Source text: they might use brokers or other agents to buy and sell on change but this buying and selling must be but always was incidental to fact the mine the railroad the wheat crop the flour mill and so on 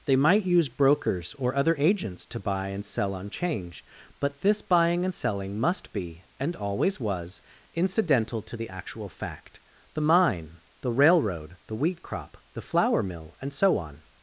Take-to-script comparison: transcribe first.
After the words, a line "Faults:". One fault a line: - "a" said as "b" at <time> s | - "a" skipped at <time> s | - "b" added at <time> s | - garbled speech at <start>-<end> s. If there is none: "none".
they might use brokers or other agents to buy and sell on change but this buying and selling must be and always was incidental to the actual fact the mine the railroad the wheat crop the flour mill and so on
Faults:
- "but" said as "and" at 6.4 s
- "the actual" added at 8.5 s